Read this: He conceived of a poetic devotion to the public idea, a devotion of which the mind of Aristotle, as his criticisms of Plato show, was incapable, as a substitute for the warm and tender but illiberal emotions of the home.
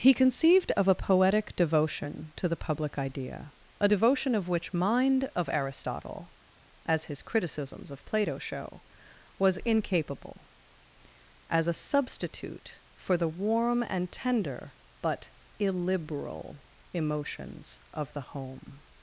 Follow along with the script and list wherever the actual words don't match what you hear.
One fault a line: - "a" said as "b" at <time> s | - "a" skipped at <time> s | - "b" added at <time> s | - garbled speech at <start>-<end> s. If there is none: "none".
- "the" skipped at 4.7 s